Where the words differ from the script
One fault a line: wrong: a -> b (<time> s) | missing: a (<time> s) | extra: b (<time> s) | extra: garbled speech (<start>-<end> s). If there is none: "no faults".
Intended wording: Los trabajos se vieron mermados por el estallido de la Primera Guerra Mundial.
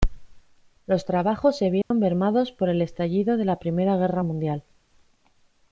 no faults